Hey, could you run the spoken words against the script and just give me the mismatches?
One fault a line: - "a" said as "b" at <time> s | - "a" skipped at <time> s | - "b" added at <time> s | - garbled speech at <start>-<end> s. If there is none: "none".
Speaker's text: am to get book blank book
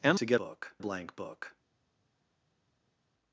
none